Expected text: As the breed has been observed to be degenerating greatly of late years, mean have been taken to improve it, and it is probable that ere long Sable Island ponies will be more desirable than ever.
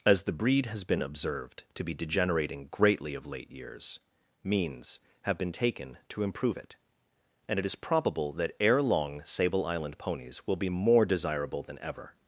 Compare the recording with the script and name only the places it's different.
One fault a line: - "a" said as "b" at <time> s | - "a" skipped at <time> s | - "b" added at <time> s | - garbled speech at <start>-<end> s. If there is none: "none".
- "mean" said as "means" at 4.4 s